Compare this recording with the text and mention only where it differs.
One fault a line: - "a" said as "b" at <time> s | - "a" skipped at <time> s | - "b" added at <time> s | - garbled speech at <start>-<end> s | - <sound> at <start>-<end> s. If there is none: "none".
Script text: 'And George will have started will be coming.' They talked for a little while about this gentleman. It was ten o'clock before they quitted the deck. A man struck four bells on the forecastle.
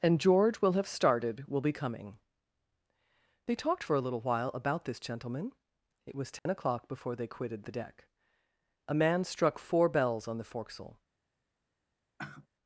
- dropout at 6.4-6.5 s
- sigh at 12.2-12.5 s